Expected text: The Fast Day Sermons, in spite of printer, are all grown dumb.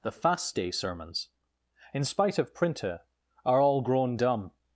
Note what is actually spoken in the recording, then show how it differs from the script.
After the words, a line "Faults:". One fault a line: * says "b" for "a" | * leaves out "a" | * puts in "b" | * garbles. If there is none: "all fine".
The Fast Day Sermons, in spite of printer, are all grown dumb.
Faults:
all fine